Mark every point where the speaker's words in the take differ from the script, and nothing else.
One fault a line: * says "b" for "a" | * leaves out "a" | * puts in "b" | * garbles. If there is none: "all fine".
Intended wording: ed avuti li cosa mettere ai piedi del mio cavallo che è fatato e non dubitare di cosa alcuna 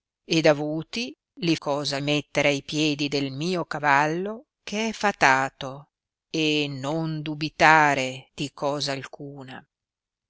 all fine